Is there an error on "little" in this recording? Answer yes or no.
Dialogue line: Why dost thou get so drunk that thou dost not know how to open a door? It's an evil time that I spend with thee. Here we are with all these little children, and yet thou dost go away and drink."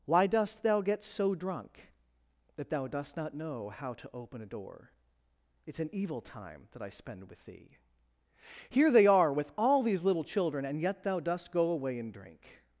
no